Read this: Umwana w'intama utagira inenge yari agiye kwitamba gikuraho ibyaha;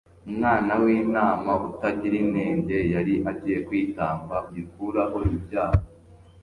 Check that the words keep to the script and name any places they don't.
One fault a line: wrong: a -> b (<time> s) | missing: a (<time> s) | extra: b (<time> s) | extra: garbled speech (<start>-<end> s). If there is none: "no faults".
no faults